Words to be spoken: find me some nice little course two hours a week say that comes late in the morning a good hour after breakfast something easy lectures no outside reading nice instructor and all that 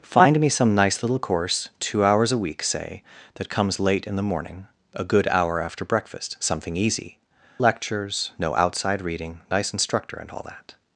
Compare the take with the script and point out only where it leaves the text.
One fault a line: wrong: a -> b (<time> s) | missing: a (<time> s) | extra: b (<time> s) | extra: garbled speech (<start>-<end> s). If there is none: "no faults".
no faults